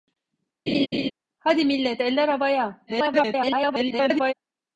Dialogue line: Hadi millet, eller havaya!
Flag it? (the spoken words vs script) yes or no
yes